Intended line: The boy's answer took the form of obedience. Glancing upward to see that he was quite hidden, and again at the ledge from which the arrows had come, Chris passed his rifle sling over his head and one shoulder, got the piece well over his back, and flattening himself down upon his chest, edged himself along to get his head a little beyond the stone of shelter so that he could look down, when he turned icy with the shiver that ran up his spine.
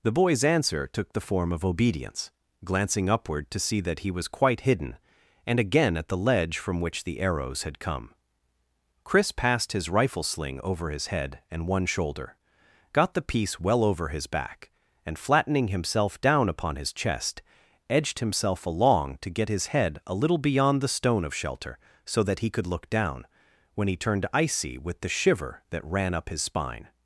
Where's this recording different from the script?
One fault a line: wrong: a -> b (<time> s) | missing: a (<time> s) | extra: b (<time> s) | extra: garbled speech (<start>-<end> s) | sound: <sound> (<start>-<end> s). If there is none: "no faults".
no faults